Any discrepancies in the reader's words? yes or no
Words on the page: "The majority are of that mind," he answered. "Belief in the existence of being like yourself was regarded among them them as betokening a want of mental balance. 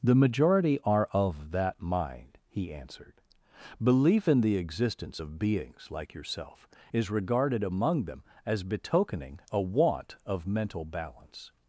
yes